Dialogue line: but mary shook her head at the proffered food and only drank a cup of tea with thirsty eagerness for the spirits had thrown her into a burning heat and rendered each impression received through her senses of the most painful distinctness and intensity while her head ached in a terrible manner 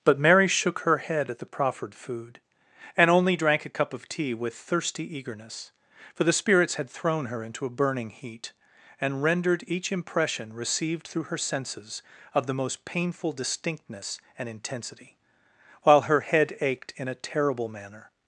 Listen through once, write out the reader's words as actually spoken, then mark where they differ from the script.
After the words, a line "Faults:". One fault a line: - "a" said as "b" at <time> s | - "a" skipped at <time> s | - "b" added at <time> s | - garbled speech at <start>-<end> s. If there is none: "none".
but mary shook her head at the proffered food and only drank a cup of tea with thirsty eagerness for the spirits had thrown her into a burning heat and rendered each impression received through her senses of the most painful distinctness and intensity while her head ached in a terrible manner
Faults:
none